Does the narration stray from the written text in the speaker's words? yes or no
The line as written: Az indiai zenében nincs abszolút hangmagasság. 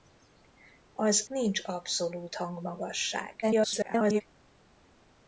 yes